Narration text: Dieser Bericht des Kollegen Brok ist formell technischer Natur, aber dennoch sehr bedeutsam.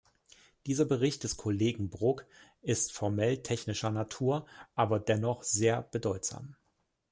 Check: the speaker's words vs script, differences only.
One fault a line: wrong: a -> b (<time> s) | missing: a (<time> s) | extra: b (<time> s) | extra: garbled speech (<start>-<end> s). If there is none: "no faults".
no faults